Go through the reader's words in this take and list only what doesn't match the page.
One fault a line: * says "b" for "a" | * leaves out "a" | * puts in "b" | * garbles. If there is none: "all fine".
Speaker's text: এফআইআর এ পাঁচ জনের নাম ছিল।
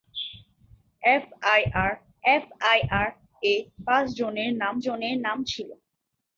* puts in "এফআইআর"
* puts in "জনের নাম"